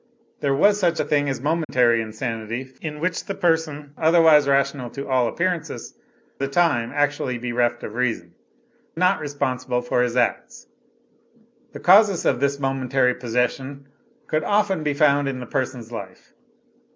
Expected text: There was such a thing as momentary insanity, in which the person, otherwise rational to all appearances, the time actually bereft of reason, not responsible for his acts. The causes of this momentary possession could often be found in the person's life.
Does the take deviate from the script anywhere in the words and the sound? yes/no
yes